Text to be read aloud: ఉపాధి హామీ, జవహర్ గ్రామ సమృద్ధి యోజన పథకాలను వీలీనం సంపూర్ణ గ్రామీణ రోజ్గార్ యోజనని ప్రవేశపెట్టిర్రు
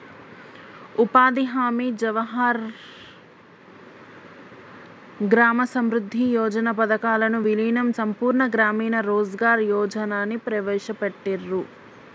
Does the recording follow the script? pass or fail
pass